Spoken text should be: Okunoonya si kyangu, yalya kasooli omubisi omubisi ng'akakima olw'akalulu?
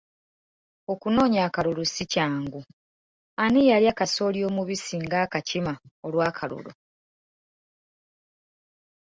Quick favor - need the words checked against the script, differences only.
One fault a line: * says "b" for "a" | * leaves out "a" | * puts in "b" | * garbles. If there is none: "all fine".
* puts in "akalulu"
* puts in "ani"
* leaves out "omubisi"